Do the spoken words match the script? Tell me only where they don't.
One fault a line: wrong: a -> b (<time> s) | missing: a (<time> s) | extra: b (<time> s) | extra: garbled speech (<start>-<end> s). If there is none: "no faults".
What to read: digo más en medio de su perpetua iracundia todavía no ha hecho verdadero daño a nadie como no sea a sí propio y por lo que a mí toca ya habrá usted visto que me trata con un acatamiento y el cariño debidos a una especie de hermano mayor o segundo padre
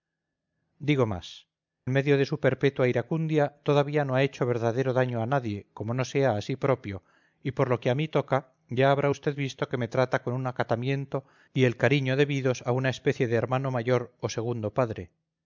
missing: en (1.5 s)